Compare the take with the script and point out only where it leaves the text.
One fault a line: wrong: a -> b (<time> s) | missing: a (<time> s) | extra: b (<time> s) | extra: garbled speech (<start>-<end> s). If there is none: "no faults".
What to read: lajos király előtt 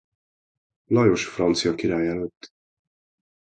extra: francia (1.2 s)